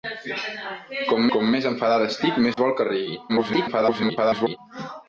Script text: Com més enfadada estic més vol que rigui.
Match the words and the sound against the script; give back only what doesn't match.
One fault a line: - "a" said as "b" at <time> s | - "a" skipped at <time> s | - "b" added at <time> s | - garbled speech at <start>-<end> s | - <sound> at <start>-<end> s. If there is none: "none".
- "com" added at 1.3 s
- dropout at 2.5-2.6 s
- garbled speech at 3.3-4.6 s